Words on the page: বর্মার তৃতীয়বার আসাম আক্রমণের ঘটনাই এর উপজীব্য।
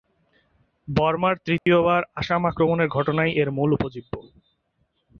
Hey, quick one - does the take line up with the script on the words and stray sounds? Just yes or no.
no